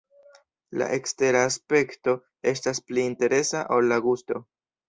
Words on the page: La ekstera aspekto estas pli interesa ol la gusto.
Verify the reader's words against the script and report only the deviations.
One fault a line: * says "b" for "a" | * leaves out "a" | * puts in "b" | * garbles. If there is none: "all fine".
all fine